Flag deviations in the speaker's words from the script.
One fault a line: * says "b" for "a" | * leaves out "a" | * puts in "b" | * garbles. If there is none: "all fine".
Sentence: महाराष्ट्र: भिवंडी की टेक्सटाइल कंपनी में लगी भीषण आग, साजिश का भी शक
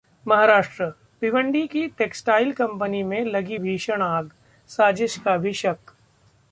all fine